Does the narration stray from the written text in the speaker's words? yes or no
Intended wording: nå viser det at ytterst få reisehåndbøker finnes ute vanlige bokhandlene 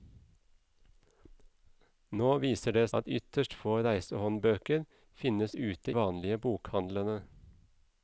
no